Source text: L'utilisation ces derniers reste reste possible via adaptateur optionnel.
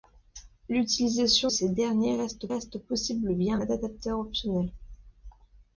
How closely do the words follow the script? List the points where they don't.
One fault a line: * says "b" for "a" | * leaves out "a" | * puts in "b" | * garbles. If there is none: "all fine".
all fine